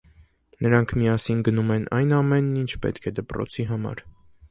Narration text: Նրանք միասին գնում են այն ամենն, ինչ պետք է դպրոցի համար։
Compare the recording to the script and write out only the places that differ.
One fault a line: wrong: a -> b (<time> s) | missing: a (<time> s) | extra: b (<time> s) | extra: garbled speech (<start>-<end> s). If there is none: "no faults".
no faults